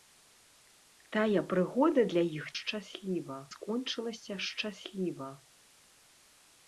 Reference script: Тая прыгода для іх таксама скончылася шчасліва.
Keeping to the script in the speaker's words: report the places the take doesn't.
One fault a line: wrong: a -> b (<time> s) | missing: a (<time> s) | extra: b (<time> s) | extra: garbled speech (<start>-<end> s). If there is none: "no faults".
wrong: таксама -> шчасліва (2.6 s)